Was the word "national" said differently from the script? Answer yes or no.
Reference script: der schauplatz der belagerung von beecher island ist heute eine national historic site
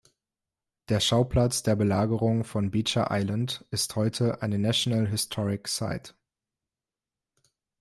no